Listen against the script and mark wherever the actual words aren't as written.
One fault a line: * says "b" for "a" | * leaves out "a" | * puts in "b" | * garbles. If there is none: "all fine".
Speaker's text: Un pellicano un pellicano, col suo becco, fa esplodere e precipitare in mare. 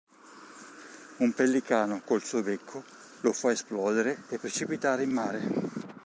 * leaves out "un pellicano"
* puts in "lo"